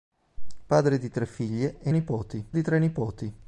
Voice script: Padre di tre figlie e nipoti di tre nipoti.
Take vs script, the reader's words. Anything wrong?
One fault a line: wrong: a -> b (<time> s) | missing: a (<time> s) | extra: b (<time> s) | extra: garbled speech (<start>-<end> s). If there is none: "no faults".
no faults